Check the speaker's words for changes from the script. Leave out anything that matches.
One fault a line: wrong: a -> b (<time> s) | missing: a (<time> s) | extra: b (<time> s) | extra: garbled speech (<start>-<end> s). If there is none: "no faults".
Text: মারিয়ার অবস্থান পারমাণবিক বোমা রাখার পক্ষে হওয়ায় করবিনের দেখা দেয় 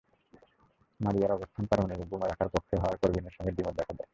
extra: সঙ্গে দ্বিমত (3.3 s)